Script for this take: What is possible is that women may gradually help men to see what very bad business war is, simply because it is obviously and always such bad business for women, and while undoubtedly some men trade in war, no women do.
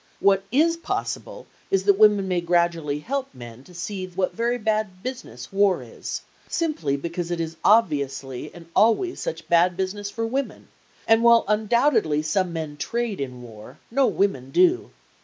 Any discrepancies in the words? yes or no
no